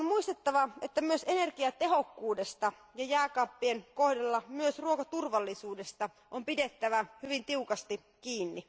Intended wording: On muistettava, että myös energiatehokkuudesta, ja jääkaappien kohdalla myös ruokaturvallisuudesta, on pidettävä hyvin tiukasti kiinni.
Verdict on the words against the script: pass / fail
pass